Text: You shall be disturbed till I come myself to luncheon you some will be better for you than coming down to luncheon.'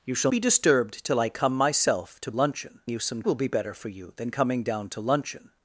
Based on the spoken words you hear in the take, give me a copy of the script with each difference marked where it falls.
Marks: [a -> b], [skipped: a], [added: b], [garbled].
You shall be disturbed till I come myself to luncheon you some will be better for you than coming down to luncheon.'